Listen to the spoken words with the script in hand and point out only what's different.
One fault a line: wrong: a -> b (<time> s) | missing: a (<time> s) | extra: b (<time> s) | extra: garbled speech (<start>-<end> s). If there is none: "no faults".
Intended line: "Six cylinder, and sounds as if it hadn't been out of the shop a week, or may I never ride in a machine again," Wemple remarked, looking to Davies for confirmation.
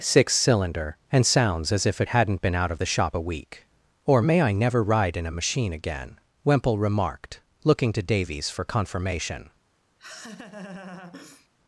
no faults